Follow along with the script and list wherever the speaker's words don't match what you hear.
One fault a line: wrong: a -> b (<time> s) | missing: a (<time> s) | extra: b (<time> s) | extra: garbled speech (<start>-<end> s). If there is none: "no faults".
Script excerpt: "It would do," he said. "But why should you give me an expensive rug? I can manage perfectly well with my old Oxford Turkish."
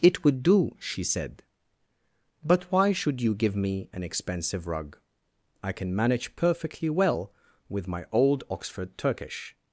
wrong: he -> she (0.8 s)